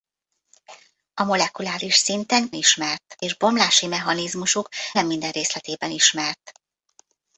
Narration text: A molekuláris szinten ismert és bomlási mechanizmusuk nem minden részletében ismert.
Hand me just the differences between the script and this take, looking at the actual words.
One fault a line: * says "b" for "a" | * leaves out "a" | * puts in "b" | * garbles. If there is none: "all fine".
all fine